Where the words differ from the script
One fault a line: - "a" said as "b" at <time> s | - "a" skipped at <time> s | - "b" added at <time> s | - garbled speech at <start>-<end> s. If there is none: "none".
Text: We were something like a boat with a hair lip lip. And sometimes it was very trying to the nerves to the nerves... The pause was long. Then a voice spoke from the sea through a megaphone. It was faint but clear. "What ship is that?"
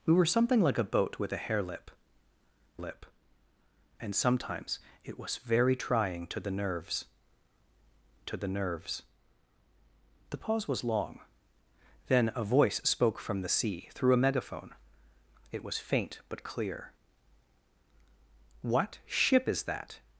none